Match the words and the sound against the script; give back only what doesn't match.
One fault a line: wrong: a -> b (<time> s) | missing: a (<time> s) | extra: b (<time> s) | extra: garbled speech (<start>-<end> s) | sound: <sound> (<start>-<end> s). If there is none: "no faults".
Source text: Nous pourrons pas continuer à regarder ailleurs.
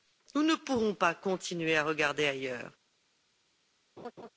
extra: ne (0.4 s)
sound: laugh (4.0-4.3 s)